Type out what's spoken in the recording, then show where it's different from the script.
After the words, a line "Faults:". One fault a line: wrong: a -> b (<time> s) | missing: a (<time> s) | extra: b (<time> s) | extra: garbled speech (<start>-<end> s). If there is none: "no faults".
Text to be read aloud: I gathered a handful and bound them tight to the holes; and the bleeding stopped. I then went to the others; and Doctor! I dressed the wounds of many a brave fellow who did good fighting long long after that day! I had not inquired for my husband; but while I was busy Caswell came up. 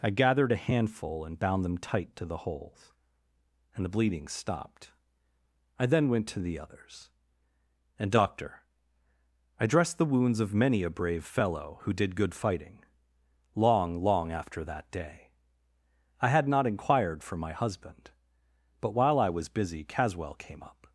I gathered a handful and bound them tight to the holes; and the bleeding stopped. I then went to the others; and Doctor! I dressed the wounds of many a brave fellow who did good fighting long long after that day! I had not inquired for my husband; but while I was busy Caswell came up.
Faults:
no faults